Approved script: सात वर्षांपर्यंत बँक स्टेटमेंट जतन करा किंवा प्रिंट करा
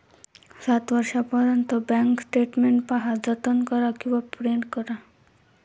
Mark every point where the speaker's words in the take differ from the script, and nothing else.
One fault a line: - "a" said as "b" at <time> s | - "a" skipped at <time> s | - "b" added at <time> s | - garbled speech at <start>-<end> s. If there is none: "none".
- "पहा" added at 2.9 s